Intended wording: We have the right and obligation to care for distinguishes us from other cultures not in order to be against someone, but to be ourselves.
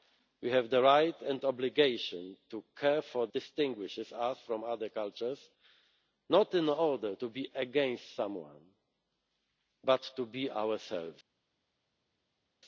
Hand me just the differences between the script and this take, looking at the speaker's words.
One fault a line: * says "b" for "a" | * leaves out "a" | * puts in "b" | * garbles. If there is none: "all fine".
all fine